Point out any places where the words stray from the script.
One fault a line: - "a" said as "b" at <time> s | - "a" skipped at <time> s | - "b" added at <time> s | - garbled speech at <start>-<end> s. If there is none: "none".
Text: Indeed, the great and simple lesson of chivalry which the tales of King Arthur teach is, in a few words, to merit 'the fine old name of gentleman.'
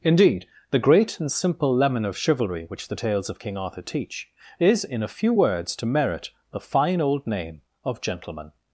- "lesson" said as "lemon" at 1.8 s